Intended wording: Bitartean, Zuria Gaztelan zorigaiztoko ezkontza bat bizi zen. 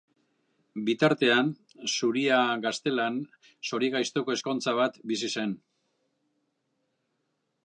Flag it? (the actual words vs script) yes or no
no